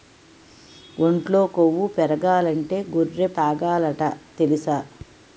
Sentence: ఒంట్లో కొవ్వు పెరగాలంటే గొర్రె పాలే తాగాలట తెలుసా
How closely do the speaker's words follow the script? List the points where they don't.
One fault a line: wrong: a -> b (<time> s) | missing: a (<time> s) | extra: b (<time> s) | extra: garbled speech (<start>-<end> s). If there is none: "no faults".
missing: పాలే (3.3 s)